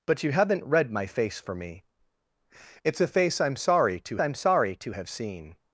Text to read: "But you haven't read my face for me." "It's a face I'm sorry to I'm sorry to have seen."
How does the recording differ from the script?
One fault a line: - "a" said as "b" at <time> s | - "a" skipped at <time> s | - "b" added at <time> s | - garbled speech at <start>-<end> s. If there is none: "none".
none